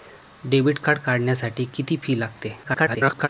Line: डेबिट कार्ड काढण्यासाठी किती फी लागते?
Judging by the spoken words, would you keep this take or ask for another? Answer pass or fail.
fail